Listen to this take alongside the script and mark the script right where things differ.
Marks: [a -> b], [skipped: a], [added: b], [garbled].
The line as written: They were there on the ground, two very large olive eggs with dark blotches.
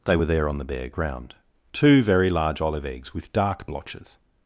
They were there on the [added: bare] ground, two very large olive eggs with dark blotches.